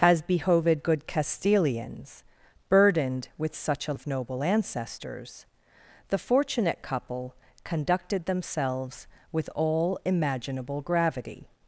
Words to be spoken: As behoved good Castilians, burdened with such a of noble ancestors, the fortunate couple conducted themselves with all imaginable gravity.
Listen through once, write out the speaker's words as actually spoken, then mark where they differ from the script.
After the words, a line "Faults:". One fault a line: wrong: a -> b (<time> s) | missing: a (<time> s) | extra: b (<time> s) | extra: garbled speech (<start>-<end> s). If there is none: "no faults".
As behoved good Castilians, burdened with such a of noble ancestors, the fortunate couple conducted themselves with all imaginable gravity.
Faults:
no faults